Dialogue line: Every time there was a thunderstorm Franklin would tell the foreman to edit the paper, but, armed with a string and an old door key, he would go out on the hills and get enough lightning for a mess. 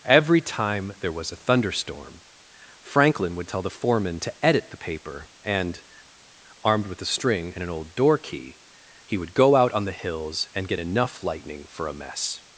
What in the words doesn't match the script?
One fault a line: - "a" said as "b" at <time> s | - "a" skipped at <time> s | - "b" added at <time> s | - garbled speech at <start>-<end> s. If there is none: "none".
- "but" said as "and" at 5.4 s